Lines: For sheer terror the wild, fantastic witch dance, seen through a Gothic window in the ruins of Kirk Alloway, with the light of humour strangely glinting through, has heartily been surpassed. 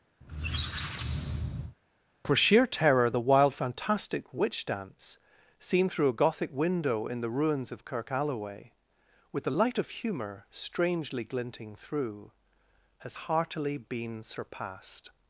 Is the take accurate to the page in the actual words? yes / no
yes